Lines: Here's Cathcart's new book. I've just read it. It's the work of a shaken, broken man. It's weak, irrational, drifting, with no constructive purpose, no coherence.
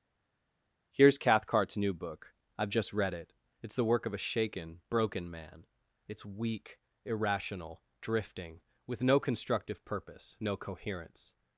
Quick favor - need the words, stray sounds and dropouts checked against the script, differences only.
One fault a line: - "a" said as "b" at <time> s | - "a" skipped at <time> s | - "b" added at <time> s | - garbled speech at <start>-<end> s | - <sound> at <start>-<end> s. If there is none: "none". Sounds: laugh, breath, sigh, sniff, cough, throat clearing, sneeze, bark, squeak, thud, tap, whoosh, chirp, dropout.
none